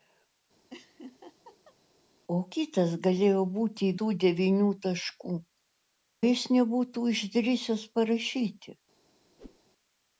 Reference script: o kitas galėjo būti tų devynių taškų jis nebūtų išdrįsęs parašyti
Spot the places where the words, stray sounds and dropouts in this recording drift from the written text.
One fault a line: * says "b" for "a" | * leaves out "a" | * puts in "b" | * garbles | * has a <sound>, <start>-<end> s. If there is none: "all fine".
* has a laugh, 0.7-1.8 s
* has a whoosh, 9.4-9.6 s